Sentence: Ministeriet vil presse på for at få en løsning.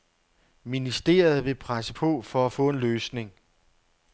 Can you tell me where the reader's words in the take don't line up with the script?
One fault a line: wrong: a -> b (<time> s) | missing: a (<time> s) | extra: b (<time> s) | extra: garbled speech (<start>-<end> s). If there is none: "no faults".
no faults